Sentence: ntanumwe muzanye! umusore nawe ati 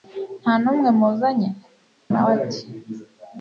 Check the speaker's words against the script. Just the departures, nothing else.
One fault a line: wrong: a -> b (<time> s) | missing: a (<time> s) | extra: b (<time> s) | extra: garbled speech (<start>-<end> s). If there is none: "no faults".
missing: umusore (1.5 s)